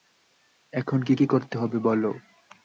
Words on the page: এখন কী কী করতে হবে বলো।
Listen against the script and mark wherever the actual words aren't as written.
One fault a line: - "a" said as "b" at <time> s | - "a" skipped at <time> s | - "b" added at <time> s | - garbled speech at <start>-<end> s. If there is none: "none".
none